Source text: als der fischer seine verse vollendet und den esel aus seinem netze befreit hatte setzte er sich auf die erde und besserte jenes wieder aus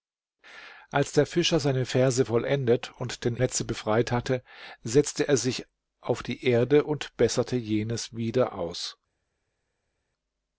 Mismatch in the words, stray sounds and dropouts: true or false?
true